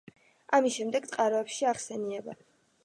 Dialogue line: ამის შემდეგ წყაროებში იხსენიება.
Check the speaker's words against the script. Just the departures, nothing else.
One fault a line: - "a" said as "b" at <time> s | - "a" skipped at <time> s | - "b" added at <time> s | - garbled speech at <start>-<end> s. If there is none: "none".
none